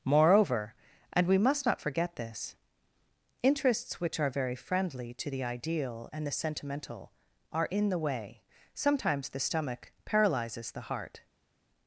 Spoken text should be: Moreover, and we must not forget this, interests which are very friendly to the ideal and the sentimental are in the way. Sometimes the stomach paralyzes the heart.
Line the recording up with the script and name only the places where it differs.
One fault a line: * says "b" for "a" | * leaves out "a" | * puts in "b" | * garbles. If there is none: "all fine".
all fine